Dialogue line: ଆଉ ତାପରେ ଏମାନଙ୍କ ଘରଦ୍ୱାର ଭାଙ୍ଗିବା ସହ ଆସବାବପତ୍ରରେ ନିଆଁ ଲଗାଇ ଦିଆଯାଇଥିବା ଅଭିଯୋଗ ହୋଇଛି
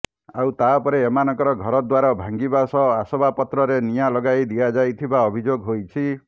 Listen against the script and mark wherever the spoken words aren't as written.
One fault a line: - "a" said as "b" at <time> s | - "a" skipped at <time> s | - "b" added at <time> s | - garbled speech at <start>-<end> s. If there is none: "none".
none